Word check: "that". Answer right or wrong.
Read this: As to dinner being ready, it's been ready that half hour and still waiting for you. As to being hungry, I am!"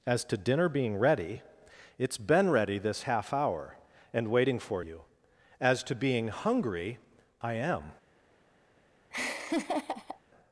wrong